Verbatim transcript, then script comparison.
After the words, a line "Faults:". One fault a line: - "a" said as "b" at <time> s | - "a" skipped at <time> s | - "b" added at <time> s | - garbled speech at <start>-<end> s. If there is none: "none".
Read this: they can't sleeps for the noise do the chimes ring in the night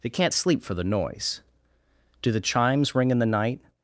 they can't sleep for the noise do the chimes ring in the night
Faults:
- "sleeps" said as "sleep" at 0.3 s